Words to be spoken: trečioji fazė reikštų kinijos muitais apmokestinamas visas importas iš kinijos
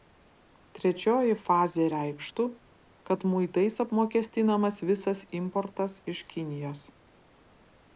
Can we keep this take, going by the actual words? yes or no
no